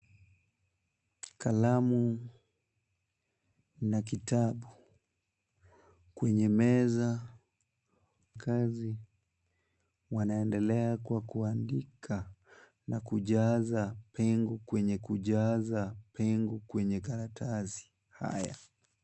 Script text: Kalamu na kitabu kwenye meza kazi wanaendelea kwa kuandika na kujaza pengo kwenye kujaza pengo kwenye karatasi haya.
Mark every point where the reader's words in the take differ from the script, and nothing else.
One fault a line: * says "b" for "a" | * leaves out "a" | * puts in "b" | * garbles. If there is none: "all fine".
all fine